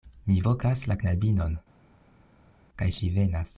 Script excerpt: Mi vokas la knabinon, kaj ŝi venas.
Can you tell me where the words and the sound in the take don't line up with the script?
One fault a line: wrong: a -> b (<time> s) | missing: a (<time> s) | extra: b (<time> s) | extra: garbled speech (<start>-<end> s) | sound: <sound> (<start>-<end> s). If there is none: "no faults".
no faults